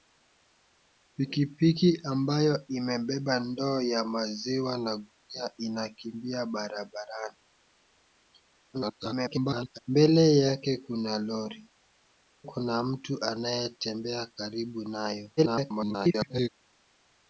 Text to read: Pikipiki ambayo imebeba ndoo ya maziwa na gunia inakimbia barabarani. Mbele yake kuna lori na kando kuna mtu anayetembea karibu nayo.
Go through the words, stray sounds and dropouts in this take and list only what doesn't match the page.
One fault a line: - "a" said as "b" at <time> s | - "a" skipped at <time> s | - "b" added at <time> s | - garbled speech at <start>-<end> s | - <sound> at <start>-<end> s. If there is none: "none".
- garbled speech at 8.7-9.8 s
- "na kando" skipped at 11.7 s
- garbled speech at 15.4-16.5 s